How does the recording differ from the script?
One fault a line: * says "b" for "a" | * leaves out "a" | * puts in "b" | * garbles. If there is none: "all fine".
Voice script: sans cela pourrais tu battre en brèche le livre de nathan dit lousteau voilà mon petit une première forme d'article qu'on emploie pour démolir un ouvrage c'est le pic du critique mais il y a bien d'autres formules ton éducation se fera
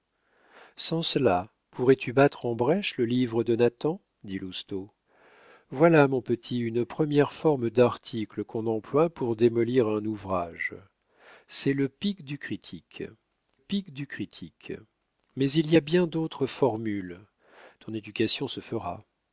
* puts in "pic du critique"